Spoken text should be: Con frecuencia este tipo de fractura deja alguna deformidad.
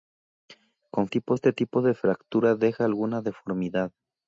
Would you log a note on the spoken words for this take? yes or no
yes